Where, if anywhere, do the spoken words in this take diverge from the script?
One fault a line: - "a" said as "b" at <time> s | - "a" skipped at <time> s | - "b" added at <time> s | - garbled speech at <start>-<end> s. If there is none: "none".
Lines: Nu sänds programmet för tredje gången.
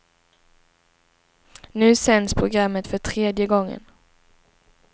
none